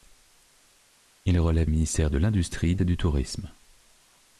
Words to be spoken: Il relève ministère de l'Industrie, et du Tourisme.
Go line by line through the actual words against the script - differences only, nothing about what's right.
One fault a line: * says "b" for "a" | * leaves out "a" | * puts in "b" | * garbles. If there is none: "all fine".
all fine